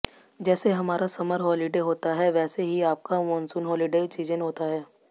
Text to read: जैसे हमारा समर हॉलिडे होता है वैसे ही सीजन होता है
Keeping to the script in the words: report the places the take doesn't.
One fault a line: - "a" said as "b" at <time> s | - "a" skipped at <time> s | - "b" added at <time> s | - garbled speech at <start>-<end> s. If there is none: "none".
- "आपका मॉनसून हॉलिडे" added at 2.9 s